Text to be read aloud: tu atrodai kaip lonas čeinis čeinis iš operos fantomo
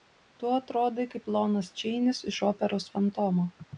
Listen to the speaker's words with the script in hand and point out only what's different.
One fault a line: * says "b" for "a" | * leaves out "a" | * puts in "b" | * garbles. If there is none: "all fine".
* leaves out "čeinis"